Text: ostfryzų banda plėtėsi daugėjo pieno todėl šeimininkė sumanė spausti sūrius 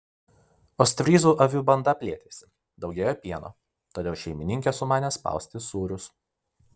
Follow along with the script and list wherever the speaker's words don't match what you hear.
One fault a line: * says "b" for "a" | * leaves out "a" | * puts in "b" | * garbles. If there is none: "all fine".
* puts in "avių"